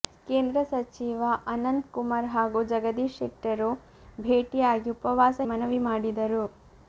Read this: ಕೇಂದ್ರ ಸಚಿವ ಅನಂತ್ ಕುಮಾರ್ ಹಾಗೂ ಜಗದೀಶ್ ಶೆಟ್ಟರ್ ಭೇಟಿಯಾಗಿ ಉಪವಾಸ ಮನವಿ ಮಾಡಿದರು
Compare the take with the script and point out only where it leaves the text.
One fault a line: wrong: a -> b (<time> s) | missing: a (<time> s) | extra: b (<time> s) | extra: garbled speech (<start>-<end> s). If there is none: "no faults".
no faults